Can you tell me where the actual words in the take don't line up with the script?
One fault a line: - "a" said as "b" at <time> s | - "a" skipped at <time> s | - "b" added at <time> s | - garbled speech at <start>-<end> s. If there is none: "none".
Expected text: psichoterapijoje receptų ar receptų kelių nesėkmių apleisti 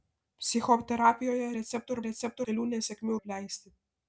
none